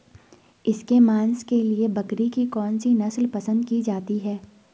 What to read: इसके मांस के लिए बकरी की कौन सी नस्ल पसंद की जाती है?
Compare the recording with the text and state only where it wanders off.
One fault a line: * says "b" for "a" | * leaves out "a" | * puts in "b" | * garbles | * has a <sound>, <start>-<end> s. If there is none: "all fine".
all fine